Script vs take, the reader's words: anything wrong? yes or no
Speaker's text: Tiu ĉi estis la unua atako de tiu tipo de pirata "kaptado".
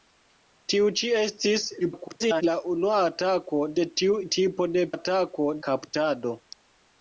yes